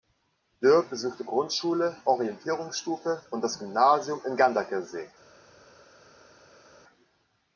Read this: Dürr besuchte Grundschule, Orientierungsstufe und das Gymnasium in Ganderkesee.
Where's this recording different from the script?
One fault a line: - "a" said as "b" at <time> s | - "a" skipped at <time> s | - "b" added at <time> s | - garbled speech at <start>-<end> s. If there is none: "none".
none